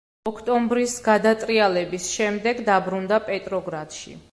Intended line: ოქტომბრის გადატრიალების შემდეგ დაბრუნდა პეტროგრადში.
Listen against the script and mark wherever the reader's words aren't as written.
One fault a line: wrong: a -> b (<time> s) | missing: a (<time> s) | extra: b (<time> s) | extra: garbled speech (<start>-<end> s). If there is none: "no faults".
no faults